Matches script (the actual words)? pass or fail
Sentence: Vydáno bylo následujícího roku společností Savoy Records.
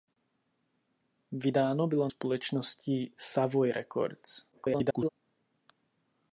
fail